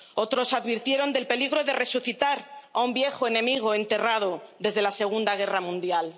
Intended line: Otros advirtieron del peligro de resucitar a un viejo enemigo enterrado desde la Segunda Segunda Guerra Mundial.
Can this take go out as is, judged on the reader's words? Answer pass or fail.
fail